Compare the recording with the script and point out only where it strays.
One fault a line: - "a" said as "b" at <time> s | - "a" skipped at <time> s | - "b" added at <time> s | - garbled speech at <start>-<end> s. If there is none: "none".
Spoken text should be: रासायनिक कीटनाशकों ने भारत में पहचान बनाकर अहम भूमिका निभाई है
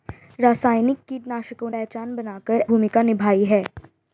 - "ने भारत में" skipped at 1.7 s
- "अहम" skipped at 2.6 s